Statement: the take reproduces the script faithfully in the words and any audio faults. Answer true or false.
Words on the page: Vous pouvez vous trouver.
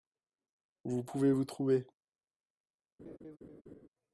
false